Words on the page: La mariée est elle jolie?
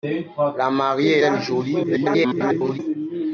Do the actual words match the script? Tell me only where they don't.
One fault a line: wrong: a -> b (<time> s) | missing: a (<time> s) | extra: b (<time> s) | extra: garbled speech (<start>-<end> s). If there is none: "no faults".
missing: est (1.2 s)
extra: garbled speech (1.8-2.8 s)